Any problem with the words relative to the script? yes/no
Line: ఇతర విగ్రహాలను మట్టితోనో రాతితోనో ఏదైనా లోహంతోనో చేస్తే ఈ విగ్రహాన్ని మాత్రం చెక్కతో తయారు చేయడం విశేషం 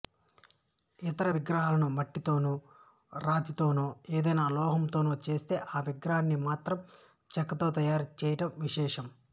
no